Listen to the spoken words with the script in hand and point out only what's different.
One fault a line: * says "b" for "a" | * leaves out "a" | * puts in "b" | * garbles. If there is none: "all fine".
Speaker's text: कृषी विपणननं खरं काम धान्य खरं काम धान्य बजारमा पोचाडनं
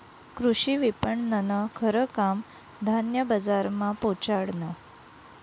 * leaves out "खरं काम धान्य"